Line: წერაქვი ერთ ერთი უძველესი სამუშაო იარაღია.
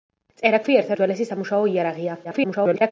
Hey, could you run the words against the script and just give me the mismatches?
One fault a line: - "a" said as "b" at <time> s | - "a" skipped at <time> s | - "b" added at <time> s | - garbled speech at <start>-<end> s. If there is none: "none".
- "ერთი" skipped at 0.9 s
- garbled speech at 2.2-2.9 s